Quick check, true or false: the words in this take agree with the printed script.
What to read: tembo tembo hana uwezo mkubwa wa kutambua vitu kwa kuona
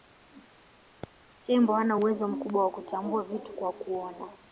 false